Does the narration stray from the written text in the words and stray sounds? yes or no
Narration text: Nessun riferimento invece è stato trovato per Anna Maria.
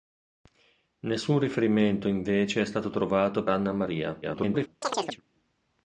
yes